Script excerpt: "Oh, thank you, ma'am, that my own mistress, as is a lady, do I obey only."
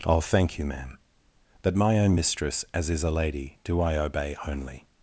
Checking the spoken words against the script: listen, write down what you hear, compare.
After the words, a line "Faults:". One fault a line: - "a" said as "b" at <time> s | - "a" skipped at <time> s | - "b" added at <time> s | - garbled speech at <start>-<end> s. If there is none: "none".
"Oh, thank you, ma'am, that my own mistress, as is a lady, do I obey only."
Faults:
none